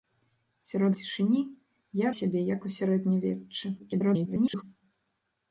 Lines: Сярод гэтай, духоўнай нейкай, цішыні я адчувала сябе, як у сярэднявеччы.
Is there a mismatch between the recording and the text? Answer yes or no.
yes